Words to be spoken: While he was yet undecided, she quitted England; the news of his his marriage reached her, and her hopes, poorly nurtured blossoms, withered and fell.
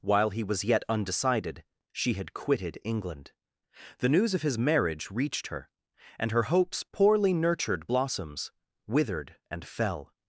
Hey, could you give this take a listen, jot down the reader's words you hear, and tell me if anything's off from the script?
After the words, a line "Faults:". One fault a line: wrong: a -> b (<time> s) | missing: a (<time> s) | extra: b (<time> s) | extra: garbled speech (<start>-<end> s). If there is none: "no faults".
While he was yet undecided, she had quitted England; the news of his marriage reached her, and her hopes, poorly nurtured blossoms, withered and fell.
Faults:
extra: had (2.1 s)
missing: his (4.6 s)